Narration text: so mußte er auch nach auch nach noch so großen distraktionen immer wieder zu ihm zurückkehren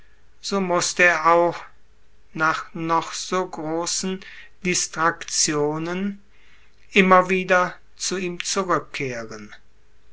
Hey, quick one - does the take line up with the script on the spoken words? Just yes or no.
no